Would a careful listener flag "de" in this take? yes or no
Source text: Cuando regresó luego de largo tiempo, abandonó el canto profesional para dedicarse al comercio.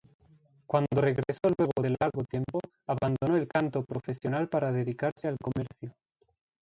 no